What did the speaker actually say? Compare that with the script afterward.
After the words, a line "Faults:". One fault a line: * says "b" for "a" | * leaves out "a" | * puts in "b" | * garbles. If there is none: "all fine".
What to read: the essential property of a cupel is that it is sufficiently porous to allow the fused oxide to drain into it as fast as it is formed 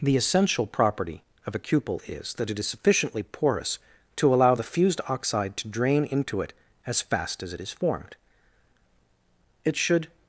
the essential property of a cupel is that it is sufficiently porous to allow the fused oxide to drain into it as fast as it is formed it should
Faults:
* puts in "it should"